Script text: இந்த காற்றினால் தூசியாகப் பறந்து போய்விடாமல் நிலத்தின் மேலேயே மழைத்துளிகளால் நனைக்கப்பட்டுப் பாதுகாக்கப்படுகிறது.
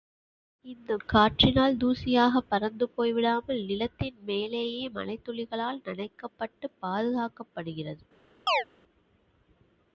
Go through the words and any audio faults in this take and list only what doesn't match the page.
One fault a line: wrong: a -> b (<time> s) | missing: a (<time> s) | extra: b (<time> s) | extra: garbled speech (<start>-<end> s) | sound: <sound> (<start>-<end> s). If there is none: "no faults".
sound: chirp (8.5-8.6 s)